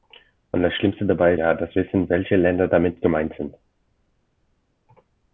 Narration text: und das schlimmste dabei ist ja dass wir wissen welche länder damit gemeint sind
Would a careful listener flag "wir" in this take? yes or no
yes